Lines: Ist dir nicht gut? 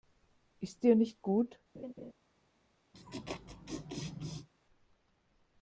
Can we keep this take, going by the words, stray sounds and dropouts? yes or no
no